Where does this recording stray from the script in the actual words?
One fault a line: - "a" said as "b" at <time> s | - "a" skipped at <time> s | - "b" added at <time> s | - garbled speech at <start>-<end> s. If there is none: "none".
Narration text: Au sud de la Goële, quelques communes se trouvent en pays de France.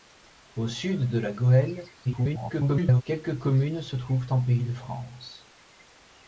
- garbled speech at 2.1-3.0 s